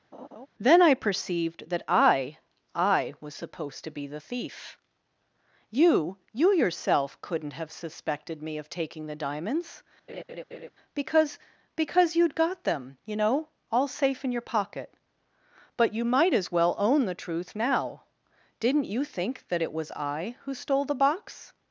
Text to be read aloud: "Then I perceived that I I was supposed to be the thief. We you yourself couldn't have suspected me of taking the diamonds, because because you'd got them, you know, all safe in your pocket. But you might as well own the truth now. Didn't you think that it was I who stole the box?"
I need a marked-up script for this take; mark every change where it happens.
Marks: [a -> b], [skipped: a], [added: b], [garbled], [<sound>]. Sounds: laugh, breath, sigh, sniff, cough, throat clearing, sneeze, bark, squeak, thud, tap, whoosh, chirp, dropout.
[laugh] "Then I perceived that I I was supposed to be the thief. [We -> You] you yourself couldn't have suspected me of taking the diamonds, [laugh] because because you'd got them, you know, all safe in your pocket. But you might as well own the truth now. Didn't you think that it was I who stole the box?"